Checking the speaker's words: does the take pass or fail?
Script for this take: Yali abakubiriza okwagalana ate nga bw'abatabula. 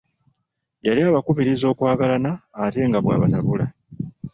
pass